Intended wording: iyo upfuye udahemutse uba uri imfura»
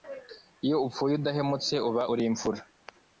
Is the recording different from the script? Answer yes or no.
no